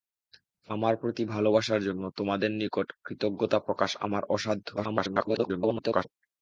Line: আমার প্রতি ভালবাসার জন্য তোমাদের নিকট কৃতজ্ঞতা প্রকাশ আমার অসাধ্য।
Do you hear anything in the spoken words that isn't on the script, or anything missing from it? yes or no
yes